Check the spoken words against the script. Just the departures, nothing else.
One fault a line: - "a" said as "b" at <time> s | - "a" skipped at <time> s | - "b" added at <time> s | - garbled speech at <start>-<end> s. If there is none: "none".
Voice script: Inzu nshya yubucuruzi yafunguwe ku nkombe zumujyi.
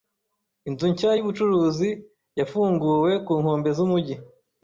none